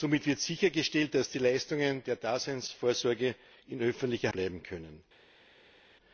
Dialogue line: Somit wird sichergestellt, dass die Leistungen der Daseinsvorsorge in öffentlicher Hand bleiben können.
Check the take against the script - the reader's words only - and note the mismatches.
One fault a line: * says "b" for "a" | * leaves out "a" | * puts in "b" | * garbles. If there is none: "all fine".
* leaves out "Hand"